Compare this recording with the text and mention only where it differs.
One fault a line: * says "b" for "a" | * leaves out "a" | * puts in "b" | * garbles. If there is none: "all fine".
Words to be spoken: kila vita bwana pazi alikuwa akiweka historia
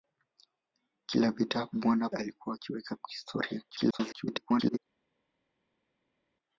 * leaves out "pazi"
* garbles